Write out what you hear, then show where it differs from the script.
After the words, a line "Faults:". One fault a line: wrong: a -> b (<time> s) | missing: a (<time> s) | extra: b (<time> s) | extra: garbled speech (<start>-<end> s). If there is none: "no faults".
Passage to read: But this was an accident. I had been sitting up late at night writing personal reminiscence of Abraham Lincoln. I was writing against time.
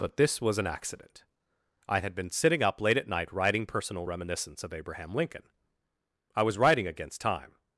But this was an accident. I had been sitting up late at night writing personal reminiscence of Abraham Lincoln. I was writing against time.
Faults:
no faults